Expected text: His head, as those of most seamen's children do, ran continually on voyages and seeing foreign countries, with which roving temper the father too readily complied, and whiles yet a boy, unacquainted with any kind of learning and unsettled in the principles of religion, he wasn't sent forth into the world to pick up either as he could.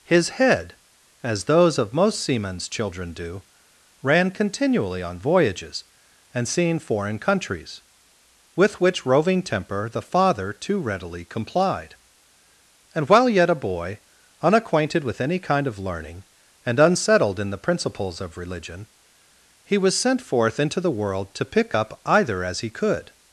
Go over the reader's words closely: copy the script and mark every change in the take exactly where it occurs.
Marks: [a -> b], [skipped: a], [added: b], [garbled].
His head, as those of most seamen's children do, ran continually on voyages and seeing foreign countries, with which roving temper the father too readily complied, and [whiles -> while] yet a boy, unacquainted with any kind of learning and unsettled in the principles of religion, he [wasn't -> was] sent forth into the world to pick up either as he could.